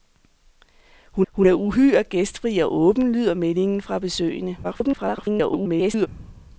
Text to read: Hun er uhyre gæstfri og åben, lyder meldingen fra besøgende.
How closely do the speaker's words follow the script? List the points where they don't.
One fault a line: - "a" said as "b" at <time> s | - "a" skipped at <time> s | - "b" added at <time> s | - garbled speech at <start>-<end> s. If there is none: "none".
- "hun" added at 1.3 s
- garbled speech at 4.6-6.1 s